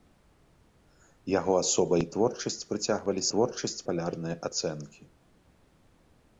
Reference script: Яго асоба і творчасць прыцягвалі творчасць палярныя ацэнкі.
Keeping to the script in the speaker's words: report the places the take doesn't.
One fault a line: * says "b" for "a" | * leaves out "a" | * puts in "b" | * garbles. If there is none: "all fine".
all fine